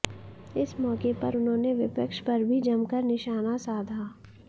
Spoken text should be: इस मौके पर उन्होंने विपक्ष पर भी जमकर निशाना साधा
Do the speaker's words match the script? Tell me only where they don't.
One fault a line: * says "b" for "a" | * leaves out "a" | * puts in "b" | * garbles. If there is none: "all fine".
all fine